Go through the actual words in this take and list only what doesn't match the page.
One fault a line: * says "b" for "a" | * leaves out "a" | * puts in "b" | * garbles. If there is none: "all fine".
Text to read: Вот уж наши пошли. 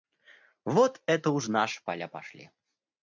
* puts in "это"
* puts in "поля"